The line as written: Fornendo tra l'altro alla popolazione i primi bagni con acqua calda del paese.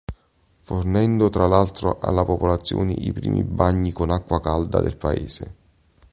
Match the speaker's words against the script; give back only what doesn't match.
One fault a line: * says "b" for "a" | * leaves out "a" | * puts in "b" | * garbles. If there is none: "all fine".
all fine